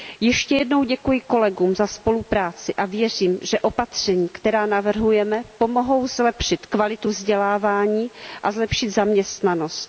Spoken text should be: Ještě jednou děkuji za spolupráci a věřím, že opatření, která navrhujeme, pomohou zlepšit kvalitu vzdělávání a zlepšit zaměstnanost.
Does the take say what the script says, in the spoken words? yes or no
no